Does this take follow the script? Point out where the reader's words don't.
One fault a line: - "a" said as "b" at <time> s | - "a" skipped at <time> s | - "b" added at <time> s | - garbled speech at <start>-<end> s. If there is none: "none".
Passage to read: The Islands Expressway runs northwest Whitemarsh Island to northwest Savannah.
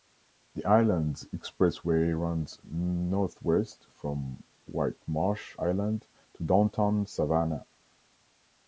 - "from" added at 4.0 s
- "northwest" said as "downtown" at 6.4 s